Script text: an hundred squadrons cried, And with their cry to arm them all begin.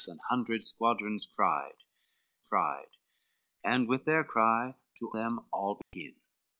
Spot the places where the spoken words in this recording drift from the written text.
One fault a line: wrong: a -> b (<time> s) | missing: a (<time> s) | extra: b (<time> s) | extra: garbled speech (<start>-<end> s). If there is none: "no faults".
extra: cried (2.4 s)
missing: arm (5.1 s)